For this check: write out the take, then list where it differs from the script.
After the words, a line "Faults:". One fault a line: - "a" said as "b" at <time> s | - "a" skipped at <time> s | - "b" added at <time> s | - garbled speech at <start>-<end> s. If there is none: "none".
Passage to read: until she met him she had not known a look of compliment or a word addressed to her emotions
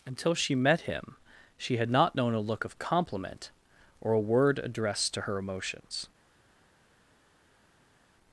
until she met him she had not known a look of compliment or a word addressed to her emotions
Faults:
none